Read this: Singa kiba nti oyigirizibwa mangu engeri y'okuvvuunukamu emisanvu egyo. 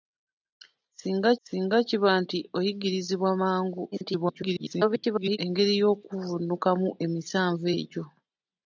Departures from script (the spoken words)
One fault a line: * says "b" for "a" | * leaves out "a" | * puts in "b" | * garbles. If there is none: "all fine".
* puts in "singa"
* garbles